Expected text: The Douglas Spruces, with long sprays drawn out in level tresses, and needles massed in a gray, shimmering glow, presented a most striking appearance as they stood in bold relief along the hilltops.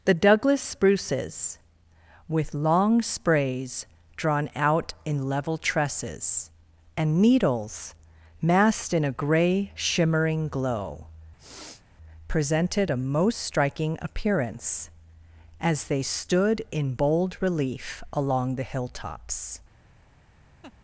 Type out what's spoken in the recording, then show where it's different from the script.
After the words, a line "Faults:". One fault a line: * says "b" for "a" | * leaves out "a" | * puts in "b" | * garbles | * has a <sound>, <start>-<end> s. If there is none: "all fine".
The Douglas Spruces, with long sprays drawn out in level tresses, and needles massed in a gray, shimmering glow, presented a most striking appearance as they stood in bold relief along the hilltops.
Faults:
* has a sniff, 11.4-11.8 s
* has a laugh, 20.6-20.7 s